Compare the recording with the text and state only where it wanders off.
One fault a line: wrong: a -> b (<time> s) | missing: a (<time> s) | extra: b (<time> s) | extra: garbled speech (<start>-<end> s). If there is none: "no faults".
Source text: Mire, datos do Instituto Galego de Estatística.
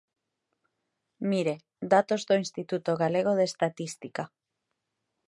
no faults